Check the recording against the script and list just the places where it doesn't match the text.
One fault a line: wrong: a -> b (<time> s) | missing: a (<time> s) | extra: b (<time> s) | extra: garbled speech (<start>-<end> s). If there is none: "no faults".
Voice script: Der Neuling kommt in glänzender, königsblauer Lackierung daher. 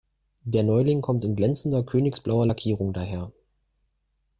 no faults